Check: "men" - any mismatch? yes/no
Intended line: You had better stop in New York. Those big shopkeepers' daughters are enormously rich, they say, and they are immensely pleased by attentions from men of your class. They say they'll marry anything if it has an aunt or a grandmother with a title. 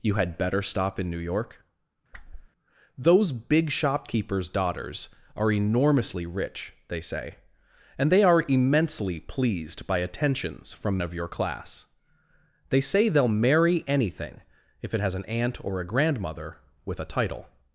yes